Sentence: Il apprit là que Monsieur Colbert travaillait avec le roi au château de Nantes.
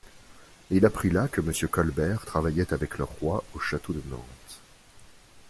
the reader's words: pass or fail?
pass